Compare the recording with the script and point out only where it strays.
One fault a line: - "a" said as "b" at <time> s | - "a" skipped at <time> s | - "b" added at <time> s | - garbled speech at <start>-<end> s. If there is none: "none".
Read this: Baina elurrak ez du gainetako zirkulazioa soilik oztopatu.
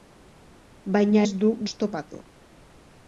- "elurrak" skipped at 1.2 s
- "gainetako zirkulazioa soilik" skipped at 1.5 s